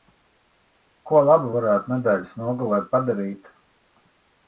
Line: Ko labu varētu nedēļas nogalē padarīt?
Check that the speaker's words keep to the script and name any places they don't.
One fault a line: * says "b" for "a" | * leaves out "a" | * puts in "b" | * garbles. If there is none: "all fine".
all fine